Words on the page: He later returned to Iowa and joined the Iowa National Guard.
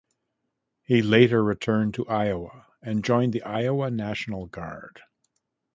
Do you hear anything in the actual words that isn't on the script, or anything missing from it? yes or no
no